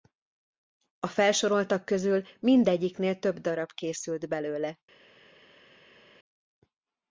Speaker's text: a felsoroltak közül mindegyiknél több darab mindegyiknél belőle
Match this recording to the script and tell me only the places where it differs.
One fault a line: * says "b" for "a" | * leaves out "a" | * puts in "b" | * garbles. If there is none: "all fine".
* says "készült" for "mindegyiknél"